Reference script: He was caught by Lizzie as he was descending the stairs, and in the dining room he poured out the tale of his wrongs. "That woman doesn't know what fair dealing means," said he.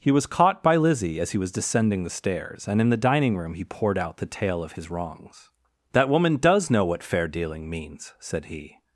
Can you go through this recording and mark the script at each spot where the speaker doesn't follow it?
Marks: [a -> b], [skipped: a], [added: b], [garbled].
He was caught by Lizzie as he was descending the stairs, and in the dining room he poured out the tale of his wrongs. "That woman [doesn't -> does] know what fair dealing means," said he.